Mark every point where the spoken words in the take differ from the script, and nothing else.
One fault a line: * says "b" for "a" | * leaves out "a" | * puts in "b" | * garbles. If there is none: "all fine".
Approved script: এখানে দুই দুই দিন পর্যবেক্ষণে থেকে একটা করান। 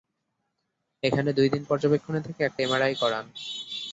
* leaves out "দুই"
* puts in "এমআরআই"